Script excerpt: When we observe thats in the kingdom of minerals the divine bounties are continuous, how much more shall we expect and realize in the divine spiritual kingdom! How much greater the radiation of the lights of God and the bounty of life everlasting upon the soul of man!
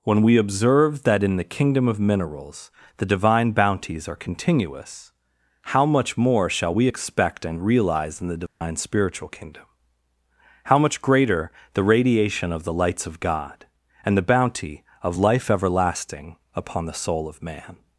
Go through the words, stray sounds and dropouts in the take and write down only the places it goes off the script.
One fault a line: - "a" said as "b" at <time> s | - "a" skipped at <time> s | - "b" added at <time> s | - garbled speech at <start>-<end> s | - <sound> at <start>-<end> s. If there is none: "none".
- "thats" said as "that" at 1.0 s
- dropout at 8.5-8.6 s